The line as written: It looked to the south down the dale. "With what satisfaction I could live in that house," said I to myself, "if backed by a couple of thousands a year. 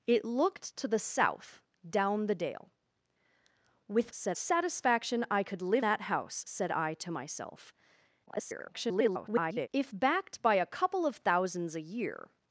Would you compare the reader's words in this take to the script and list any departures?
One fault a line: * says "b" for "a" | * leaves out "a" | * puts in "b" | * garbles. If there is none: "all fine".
* says "said" for "what"
* leaves out "in"
* garbles